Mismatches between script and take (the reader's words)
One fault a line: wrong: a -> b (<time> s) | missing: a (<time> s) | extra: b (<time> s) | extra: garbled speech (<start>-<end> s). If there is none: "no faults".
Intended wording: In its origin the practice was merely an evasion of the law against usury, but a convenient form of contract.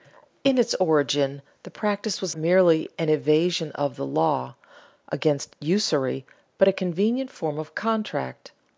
no faults